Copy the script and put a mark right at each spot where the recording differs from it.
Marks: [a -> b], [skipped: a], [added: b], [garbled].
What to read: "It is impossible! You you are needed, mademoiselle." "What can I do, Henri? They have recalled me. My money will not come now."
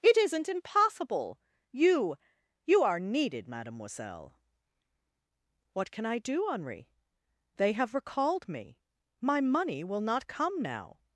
"It [is -> isn't] impossible! You you are needed, mademoiselle." "What can I do, Henri? They have recalled me. My money will not come now."